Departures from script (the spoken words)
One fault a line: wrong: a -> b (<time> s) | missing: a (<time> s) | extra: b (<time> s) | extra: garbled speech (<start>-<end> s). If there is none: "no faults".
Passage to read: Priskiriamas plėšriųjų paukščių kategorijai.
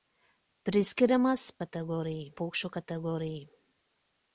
wrong: plėšriųjų -> kategorijai (1.6 s)